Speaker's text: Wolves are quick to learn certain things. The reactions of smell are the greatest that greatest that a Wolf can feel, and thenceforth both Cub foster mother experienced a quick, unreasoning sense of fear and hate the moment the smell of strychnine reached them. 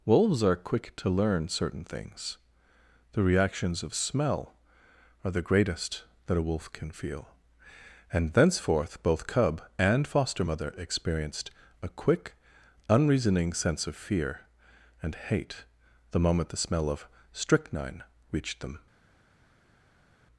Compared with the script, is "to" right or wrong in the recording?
right